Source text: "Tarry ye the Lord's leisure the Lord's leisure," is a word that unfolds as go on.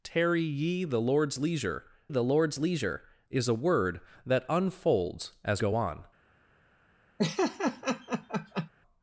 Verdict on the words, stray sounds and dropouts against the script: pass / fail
fail